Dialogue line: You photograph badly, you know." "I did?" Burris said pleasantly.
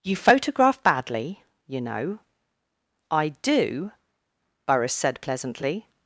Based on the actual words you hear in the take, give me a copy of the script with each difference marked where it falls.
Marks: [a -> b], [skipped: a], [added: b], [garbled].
You photograph badly, you know." "I [did?" -> do] Burris said pleasantly.